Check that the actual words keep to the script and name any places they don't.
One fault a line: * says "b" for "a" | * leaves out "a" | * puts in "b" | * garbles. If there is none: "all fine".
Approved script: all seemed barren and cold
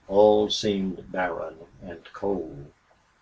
all fine